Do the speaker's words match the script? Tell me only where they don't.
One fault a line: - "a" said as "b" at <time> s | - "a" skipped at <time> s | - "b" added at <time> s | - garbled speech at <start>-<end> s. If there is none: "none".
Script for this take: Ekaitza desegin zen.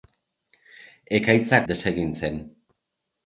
none